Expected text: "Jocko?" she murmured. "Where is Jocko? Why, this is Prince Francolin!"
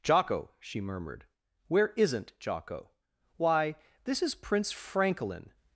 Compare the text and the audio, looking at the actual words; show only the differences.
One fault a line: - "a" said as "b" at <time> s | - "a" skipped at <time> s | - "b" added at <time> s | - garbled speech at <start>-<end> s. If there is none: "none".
- "is" said as "isn't" at 1.9 s